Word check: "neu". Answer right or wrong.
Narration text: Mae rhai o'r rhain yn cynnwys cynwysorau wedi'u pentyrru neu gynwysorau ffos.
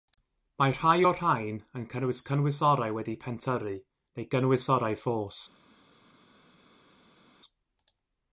right